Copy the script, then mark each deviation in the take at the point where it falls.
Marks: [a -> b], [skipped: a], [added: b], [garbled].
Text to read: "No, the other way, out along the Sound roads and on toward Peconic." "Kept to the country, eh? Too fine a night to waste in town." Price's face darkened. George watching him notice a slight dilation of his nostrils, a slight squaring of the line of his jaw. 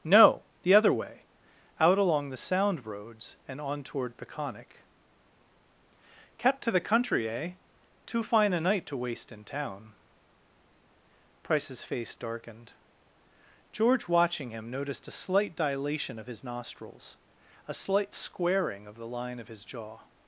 "No, the other way, out along the Sound roads and on toward Peconic." "Kept to the country, eh? Too fine a night to waste in town." Price's face darkened. George watching him [notice -> noticed] a slight dilation of his nostrils, a slight squaring of the line of his jaw.